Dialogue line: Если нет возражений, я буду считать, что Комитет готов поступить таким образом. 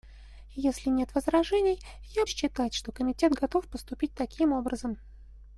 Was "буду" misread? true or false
true